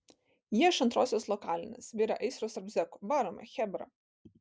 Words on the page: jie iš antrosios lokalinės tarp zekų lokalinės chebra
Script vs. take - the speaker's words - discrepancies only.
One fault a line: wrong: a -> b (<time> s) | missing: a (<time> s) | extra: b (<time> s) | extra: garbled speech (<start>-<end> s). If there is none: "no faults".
extra: virė aistros (2.0 s)
wrong: lokalinės -> varome (3.2 s)